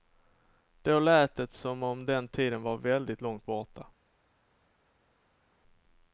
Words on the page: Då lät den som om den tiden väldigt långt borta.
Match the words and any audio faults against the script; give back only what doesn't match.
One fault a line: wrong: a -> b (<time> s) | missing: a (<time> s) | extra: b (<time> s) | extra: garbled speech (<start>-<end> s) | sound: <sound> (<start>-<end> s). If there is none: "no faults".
wrong: den -> det (1.4 s)
extra: var (2.6 s)